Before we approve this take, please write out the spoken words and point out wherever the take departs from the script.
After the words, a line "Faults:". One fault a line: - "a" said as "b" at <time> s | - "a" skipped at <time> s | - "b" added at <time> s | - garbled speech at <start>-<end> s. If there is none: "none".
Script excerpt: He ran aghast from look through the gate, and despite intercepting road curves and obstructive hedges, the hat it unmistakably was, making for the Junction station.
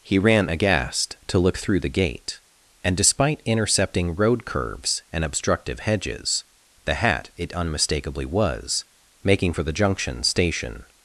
He ran aghast to look through the gate, and despite intercepting road curves and obstructive hedges, the hat it unmistakably was, making for the Junction station.
Faults:
- "from" said as "to" at 1.3 s